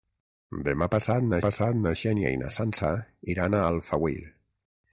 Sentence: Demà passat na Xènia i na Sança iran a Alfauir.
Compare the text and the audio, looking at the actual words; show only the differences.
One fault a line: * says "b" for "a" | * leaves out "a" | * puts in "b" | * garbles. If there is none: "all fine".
* puts in "passat na"